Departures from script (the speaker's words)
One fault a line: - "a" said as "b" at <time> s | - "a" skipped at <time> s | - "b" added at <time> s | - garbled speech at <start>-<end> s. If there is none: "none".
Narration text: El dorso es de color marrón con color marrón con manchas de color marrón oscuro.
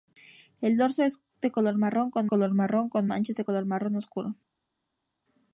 none